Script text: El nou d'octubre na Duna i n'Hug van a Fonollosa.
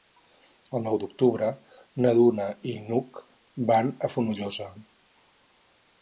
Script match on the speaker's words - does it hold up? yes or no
yes